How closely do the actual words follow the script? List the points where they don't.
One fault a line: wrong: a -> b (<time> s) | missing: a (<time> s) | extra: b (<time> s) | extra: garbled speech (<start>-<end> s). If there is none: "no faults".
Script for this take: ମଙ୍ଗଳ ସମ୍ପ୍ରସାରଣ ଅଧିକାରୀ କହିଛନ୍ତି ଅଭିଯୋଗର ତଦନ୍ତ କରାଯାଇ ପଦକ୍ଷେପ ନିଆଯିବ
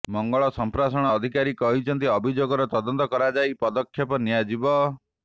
no faults